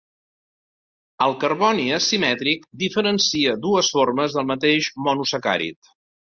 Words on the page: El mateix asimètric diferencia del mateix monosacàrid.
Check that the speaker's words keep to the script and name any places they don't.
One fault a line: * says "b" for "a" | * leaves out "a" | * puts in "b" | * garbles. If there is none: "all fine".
* says "carboni" for "mateix"
* puts in "dues formes"